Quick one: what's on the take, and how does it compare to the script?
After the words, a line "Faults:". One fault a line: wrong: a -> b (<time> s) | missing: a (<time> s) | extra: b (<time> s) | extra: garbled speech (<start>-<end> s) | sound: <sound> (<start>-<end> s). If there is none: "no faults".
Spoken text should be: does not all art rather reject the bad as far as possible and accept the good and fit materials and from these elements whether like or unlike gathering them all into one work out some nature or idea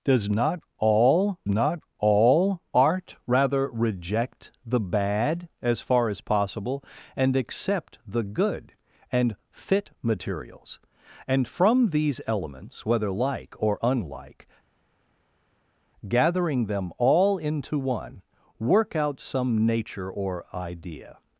does not all not all art rather reject the bad as far as possible and accept the good and fit materials and from these elements whether like or unlike gathering them all into one work out some nature or idea
Faults:
extra: not all (1.5 s)